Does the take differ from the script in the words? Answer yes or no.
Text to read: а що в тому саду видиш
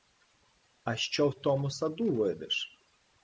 no